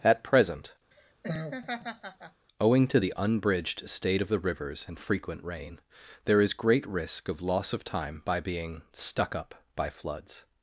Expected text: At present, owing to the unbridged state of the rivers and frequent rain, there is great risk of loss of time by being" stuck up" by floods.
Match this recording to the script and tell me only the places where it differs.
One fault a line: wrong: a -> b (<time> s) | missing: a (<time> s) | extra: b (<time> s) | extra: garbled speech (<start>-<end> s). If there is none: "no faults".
no faults